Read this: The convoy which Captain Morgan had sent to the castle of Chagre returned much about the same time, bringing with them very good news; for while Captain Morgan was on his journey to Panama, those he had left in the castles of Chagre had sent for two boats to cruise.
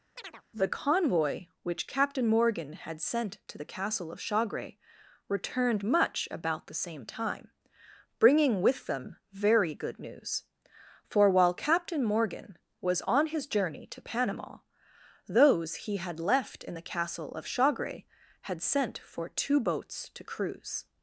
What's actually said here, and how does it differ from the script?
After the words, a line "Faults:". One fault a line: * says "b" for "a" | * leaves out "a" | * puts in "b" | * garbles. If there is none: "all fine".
The convoy which Captain Morgan had sent to the castle of Chagre returned much about the same time, bringing with them very good news; for while Captain Morgan was on his journey to Panama, those he had left in the castle of Chagre had sent for two boats to cruise.
Faults:
* says "castle" for "castles"